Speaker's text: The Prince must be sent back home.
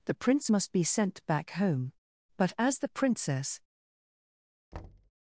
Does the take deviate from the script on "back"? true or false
false